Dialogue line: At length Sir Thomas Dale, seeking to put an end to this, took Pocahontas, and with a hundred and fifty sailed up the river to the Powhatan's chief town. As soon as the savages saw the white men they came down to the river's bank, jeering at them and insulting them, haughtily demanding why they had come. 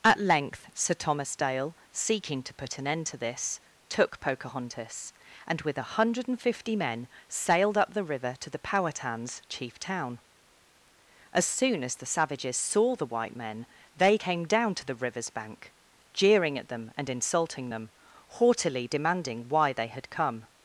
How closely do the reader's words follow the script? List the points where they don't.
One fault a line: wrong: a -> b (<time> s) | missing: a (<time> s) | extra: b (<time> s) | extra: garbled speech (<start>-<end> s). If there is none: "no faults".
extra: men (6.7 s)